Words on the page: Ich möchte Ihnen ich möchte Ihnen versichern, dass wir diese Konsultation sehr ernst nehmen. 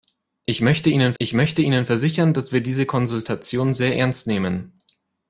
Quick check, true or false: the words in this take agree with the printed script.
true